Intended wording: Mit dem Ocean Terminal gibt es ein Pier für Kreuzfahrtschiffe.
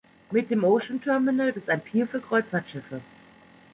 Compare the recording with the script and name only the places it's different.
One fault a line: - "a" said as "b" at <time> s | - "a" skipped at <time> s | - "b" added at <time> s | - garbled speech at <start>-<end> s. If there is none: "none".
- "gibt" skipped at 1.5 s